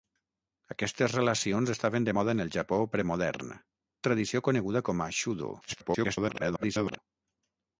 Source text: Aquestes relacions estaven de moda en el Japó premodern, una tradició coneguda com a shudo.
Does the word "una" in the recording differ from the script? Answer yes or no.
yes